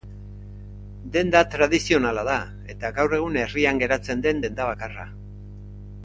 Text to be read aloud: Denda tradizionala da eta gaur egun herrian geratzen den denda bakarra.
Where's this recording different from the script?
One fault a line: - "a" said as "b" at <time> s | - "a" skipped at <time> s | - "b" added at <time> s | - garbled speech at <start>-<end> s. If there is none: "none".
none